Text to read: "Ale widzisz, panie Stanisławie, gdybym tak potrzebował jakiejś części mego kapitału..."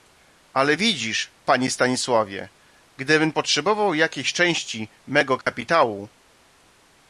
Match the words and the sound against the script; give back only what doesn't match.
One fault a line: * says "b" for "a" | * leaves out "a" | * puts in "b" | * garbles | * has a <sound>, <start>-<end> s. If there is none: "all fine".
* leaves out "tak"
* has a dropout, 5.4-5.5 s